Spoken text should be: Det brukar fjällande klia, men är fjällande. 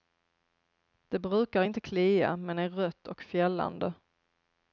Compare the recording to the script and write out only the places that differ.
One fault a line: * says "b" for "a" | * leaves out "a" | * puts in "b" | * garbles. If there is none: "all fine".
* says "inte" for "fjällande"
* puts in "rött och"